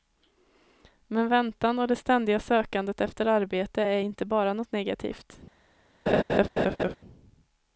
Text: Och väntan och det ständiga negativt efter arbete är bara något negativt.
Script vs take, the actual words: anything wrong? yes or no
yes